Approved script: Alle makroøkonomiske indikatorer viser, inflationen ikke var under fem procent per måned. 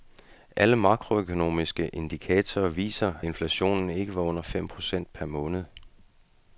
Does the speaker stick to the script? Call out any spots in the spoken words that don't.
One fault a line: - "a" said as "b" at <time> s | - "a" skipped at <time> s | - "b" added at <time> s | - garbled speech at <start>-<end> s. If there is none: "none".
none